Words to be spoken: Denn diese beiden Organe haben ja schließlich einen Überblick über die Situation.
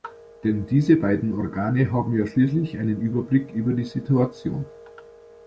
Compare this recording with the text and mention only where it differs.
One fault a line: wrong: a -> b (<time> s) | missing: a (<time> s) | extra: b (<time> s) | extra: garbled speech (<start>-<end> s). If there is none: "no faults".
no faults